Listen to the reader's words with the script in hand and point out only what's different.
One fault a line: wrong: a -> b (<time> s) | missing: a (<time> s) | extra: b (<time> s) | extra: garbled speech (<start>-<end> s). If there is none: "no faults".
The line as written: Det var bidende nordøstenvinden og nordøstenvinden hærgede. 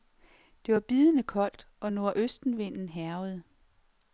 wrong: nordøstenvinden -> koldt (1.2 s)